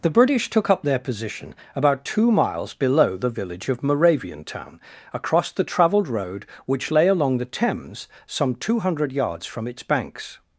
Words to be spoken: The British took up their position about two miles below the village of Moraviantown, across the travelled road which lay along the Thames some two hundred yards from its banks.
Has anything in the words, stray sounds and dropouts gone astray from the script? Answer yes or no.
no